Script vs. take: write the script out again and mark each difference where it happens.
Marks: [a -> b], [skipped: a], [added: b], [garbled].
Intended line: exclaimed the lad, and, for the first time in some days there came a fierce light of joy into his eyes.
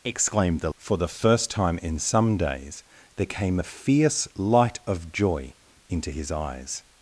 exclaimed the [skipped: lad, and,] for the first time in some days there came a fierce light of joy into his eyes.